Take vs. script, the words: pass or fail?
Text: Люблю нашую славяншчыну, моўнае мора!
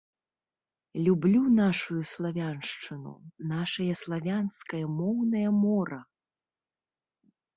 fail